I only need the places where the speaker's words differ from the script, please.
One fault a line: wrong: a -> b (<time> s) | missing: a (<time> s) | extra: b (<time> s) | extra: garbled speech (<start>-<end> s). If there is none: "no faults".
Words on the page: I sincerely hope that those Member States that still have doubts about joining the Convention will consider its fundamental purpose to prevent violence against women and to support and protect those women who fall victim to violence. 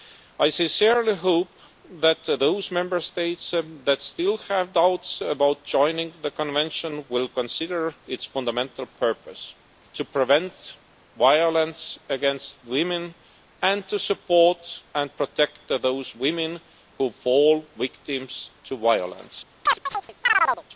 no faults